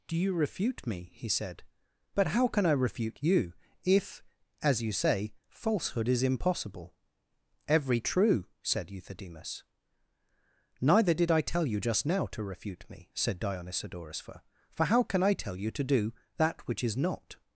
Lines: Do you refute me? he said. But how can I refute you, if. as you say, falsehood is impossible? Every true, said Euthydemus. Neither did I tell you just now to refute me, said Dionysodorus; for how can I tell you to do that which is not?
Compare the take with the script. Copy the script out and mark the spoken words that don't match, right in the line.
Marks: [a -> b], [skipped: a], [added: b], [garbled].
Do you refute me? he said. But how can I refute you, if. as you say, falsehood is impossible? Every true, said Euthydemus. Neither did I tell you just now to refute me, said Dionysodorus; for how can I tell you to do that which is not?